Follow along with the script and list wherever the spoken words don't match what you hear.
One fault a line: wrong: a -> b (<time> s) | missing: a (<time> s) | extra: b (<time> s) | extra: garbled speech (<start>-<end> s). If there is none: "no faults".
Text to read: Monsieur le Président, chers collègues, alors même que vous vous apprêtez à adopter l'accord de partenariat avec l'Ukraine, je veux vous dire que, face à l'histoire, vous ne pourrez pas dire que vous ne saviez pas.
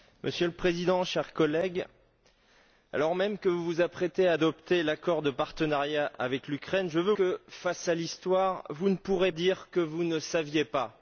missing: vous dire (7.1 s)
missing: pas (9.3 s)